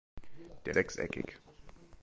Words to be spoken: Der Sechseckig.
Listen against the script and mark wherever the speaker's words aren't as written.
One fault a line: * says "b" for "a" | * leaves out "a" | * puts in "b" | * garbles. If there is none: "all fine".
all fine